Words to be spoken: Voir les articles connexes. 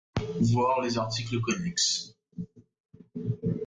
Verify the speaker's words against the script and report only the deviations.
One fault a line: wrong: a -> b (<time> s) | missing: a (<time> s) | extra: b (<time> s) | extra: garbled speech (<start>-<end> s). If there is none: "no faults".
no faults